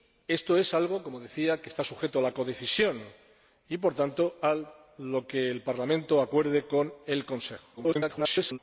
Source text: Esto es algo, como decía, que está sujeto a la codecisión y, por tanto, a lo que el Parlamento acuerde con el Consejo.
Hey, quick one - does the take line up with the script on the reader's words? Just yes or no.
no